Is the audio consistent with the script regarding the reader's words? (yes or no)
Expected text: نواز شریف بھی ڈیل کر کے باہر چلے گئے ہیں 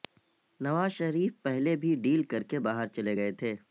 no